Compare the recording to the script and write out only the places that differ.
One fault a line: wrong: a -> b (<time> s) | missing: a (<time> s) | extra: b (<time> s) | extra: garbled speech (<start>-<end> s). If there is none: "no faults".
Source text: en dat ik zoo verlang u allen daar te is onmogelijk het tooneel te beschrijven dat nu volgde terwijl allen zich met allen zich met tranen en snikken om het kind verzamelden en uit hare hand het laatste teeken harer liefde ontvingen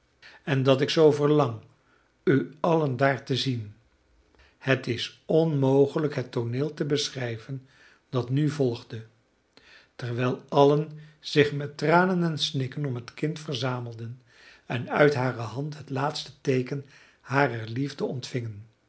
extra: zien het (3.3 s)
missing: allen zich met (11.8 s)